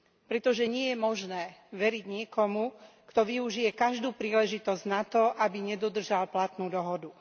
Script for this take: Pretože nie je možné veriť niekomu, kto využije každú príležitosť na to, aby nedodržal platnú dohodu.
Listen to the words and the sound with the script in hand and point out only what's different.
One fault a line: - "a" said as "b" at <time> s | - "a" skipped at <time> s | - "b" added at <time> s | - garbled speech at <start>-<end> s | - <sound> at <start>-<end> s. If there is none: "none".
none